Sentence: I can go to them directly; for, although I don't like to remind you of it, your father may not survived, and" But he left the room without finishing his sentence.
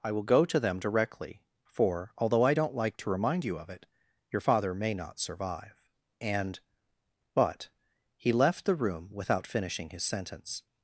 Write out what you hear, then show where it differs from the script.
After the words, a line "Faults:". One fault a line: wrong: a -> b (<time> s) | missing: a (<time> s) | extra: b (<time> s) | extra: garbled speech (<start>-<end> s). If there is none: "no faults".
I will go to them directly; for, although I don't like to remind you of it, your father may not survive, and" But he left the room without finishing his sentence.
Faults:
wrong: can -> will (0.1 s)
wrong: survived -> survive (5.2 s)